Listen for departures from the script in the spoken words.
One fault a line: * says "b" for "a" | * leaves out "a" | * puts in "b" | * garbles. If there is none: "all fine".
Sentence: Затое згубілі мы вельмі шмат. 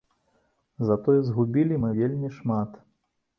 all fine